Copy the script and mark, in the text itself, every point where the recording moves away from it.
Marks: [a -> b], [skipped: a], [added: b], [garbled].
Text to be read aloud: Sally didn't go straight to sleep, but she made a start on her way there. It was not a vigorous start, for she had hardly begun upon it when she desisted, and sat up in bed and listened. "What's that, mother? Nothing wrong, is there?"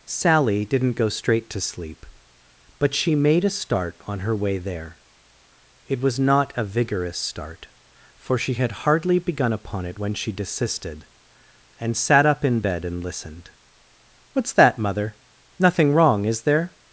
Sally didn't go straight to sleep, but she made a start on her way there. It was not a vigorous start, for she had hardly begun upon it when she desisted, and sat up in bed and listened. "What's that, mother? Nothing wrong, is there?"